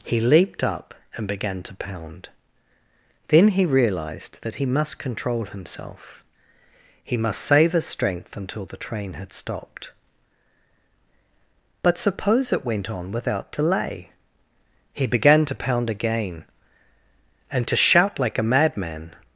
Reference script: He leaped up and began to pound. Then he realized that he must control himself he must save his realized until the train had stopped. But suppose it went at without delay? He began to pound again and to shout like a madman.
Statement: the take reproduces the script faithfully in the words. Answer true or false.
false